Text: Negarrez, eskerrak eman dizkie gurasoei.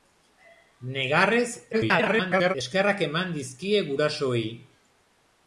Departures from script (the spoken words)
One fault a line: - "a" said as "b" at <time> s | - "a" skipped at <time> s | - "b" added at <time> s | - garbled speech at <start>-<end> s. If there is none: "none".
- garbled speech at 1.7-2.5 s